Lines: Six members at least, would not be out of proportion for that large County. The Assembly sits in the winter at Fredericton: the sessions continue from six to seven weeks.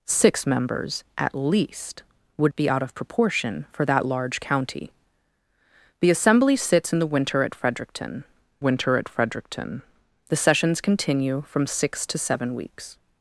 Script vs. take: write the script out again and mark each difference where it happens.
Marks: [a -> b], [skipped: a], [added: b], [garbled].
Six members at least, would [skipped: not] be out of proportion for that large County. The Assembly sits in the winter at Fredericton: [added: winter at Fredericton] the sessions continue from six to seven weeks.